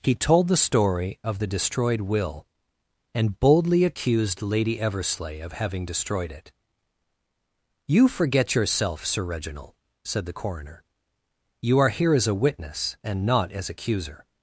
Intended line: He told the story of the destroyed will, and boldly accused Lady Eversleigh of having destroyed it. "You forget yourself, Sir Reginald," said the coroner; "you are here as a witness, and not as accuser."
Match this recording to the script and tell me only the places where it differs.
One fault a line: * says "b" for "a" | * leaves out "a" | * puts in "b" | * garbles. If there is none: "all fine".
all fine